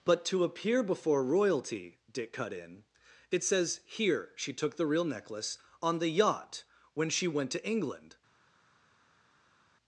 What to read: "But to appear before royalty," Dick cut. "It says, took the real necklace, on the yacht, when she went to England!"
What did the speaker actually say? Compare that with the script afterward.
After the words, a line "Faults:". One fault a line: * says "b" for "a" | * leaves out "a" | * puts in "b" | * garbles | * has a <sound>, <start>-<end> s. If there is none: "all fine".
"But to appear before royalty," Dick cut in. "It says, here, she took the real necklace, on the yacht, when she went to England!"
Faults:
* puts in "in"
* puts in "here she"